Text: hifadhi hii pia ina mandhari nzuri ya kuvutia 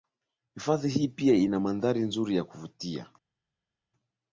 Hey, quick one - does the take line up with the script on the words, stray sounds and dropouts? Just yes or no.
yes